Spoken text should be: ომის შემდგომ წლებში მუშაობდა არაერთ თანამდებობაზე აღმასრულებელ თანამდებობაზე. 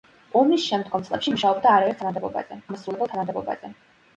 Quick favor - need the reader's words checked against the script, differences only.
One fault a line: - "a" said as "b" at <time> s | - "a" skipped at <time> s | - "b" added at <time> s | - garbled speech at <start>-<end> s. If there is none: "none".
none